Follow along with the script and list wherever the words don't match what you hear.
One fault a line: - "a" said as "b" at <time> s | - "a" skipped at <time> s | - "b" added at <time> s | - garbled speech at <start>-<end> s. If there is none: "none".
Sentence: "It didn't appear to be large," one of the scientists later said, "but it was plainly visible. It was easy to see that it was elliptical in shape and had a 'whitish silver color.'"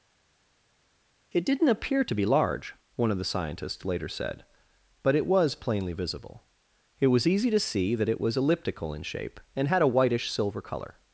none